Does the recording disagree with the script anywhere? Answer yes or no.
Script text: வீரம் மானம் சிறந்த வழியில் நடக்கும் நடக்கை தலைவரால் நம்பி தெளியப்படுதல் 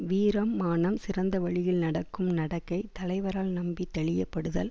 no